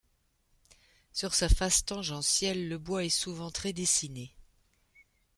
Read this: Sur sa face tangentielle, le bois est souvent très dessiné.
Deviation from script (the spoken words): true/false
false